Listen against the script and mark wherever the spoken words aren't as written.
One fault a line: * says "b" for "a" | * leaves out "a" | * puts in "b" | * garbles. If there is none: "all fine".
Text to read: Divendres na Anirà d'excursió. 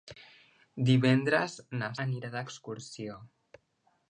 all fine